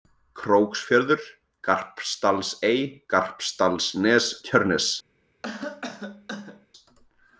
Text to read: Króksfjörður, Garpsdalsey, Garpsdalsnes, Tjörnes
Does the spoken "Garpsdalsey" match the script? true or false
true